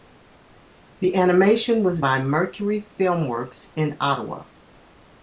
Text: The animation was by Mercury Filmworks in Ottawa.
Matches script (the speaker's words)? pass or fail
pass